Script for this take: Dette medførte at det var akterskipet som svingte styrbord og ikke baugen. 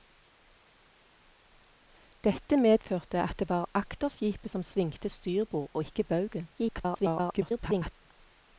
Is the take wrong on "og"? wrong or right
right